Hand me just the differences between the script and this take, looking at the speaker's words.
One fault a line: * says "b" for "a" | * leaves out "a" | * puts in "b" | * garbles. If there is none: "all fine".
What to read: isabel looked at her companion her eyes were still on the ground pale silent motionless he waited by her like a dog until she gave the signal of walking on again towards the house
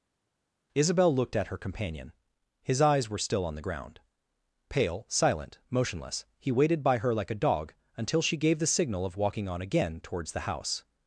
* says "his" for "her"